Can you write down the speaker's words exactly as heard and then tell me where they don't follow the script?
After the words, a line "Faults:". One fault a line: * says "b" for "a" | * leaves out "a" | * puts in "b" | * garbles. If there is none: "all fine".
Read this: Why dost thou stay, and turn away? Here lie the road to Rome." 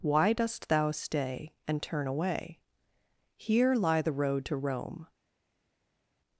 Why dost thou stay, and turn away? Here lie the road to Rome."
Faults:
all fine